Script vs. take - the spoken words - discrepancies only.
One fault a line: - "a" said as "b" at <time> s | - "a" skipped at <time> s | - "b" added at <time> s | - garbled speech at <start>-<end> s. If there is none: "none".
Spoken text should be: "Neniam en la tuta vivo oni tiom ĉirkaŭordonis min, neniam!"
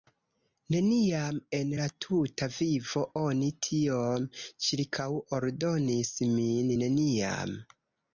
none